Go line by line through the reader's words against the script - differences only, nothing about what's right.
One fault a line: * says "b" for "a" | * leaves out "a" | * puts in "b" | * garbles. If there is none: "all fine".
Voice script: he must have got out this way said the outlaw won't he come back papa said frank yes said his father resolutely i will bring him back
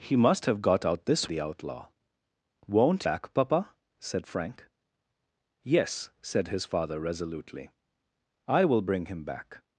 * leaves out "way said"
* leaves out "he come"